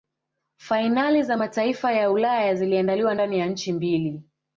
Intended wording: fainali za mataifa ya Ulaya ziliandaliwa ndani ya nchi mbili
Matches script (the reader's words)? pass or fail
pass